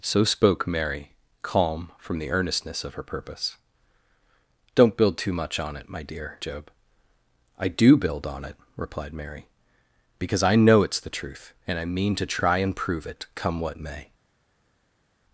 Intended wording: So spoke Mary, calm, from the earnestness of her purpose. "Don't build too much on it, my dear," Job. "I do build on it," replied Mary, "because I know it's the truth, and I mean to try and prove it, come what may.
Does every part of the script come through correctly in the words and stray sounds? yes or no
yes